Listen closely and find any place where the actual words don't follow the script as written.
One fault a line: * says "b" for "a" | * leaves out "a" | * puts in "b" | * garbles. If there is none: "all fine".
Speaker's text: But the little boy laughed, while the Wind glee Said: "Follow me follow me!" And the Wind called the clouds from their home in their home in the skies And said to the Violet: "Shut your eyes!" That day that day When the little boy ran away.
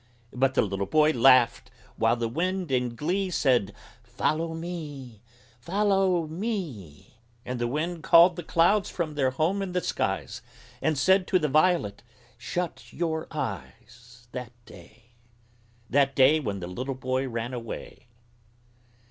* puts in "in"
* leaves out "their home in"